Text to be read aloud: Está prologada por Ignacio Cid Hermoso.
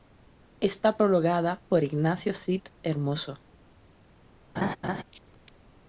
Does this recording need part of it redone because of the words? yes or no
no